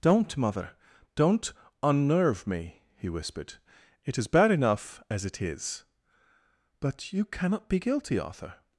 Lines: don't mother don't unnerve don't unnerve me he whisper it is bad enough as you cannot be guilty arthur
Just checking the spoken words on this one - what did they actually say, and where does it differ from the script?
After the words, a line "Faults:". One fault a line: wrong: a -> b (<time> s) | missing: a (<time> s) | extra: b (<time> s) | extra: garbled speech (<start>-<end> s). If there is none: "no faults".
don't mother don't unnerve me he whispered it is bad enough as it is but you cannot be guilty arthur
Faults:
missing: don't unnerve (2.5 s)
wrong: whisper -> whispered (3.1 s)
extra: it is but (5.2 s)